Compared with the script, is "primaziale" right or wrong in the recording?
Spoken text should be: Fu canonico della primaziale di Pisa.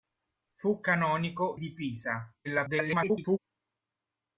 wrong